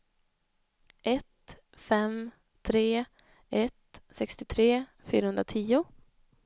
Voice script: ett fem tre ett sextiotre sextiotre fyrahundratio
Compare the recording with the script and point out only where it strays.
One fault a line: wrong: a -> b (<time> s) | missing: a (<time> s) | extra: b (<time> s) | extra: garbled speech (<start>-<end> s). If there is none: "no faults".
missing: sextiotre (4.8 s)